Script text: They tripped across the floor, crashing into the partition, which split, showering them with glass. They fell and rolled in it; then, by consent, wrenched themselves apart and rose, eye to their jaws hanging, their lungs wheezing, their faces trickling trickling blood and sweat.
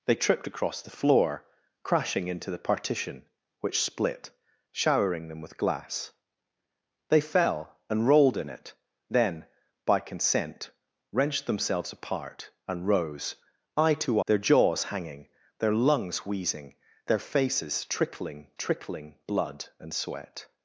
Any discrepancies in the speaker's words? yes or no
no